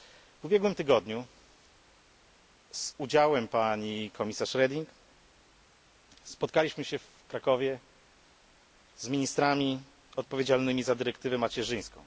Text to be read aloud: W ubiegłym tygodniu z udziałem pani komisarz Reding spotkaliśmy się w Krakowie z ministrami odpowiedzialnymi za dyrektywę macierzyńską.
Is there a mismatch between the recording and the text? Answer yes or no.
no